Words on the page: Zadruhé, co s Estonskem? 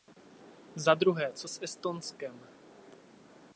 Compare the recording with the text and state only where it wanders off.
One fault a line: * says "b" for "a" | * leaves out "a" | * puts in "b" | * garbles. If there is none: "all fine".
all fine